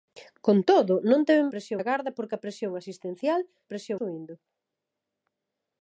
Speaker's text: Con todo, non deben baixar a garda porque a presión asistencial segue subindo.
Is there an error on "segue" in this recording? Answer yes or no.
yes